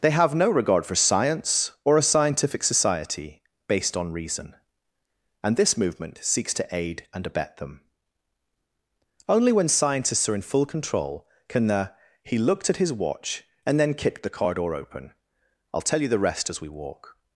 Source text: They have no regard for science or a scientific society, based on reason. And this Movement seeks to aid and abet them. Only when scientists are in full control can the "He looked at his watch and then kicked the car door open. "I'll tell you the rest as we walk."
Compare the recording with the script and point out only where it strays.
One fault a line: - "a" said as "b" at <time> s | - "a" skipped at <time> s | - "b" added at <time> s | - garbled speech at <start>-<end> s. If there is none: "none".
none